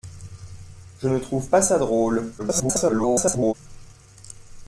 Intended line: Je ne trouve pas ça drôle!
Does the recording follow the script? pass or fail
fail